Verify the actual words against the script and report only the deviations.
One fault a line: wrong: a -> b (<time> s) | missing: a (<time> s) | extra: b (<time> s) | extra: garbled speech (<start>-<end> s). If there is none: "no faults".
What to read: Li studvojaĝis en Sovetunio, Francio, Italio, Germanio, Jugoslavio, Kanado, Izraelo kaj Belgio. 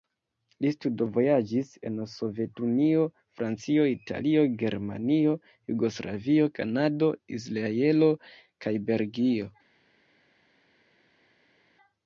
no faults